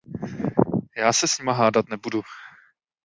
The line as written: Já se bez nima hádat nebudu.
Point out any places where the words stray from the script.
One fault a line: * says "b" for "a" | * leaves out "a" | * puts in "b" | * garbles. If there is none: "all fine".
* says "s" for "bez"